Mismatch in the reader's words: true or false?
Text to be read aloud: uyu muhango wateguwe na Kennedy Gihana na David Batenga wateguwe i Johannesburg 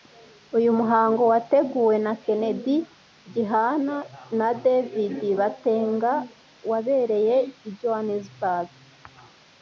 true